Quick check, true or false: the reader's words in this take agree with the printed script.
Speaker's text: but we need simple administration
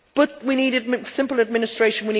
true